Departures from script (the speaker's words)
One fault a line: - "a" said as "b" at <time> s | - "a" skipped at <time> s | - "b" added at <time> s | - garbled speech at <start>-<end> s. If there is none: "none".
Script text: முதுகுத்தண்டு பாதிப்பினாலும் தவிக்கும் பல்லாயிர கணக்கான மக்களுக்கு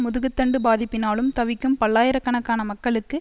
none